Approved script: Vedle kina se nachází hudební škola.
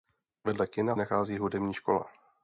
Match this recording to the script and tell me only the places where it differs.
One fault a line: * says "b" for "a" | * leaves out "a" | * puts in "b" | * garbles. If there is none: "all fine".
* leaves out "se"